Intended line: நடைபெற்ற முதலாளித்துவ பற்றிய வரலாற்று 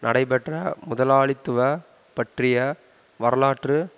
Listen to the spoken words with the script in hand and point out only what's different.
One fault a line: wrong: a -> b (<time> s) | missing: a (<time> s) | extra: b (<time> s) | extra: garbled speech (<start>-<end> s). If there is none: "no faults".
no faults